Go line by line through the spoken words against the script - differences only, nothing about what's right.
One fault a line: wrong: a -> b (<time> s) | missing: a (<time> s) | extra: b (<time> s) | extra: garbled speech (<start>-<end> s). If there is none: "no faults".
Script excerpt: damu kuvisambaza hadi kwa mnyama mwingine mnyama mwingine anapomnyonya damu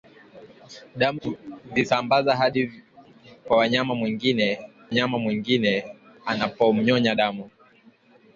no faults